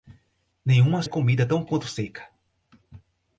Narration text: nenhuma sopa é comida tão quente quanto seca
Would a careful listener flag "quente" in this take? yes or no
yes